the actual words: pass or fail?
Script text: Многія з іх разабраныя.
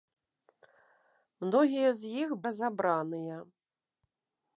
pass